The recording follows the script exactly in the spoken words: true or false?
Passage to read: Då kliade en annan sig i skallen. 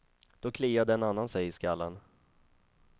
true